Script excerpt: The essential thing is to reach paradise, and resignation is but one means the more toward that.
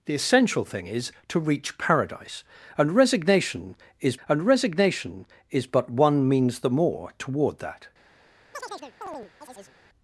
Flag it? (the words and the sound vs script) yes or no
yes